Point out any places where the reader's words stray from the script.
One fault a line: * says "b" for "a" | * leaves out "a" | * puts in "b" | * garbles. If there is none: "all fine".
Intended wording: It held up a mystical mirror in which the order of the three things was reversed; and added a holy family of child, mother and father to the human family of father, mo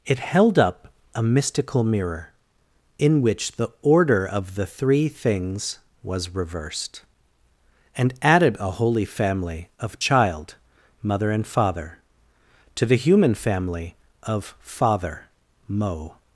all fine